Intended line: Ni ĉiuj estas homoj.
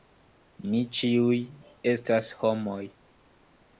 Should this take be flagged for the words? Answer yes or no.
no